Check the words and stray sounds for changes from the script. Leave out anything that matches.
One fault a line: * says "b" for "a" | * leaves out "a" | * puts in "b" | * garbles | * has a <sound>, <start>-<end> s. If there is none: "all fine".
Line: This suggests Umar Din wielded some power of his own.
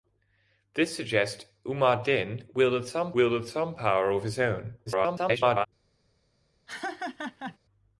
* puts in "wielded some"
* garbles
* has a laugh, 6.7-7.6 s